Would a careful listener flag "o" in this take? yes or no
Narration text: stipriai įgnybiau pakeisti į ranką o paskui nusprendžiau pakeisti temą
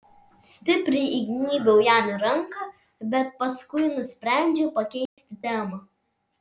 yes